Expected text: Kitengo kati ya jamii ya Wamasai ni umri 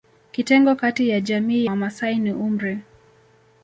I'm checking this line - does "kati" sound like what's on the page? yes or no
yes